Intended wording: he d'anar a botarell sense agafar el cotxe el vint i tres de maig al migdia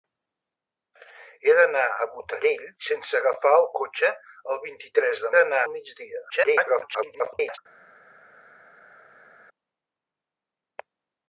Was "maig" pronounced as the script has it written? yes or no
no